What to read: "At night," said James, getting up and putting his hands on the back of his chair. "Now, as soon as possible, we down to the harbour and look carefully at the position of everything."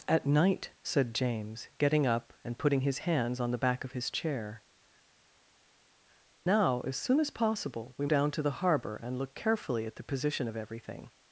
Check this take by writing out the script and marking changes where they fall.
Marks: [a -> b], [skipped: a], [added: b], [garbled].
"At night," said James, getting up and putting his hands on the back of his chair. "Now, as soon as possible, we down to the harbour and look carefully at the position of everything."